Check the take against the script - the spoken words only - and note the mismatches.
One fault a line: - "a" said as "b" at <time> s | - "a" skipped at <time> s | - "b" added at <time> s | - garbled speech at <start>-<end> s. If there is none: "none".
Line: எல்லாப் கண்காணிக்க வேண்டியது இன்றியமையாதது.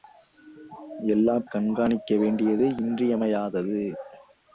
none